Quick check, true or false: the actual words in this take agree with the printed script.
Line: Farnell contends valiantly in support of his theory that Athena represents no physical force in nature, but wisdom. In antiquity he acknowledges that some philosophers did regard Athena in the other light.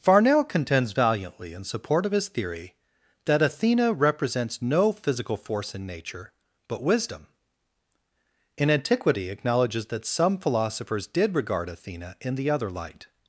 false